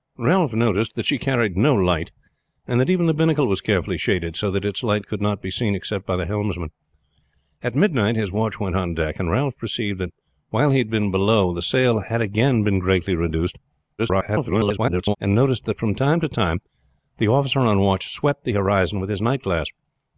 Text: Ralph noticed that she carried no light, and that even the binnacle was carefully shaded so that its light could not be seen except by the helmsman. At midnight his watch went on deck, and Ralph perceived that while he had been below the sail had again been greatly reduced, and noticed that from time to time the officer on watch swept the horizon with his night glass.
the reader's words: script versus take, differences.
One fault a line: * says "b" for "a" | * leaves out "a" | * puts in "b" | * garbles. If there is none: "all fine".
* garbles